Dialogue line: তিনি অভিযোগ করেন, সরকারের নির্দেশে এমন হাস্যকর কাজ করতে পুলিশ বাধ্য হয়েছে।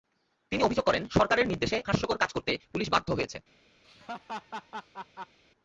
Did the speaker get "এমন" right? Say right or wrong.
wrong